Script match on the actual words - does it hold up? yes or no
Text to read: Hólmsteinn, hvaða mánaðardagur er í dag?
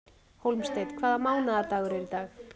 yes